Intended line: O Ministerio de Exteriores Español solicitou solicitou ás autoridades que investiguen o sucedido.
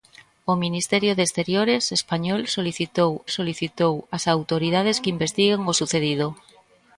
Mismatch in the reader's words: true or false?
false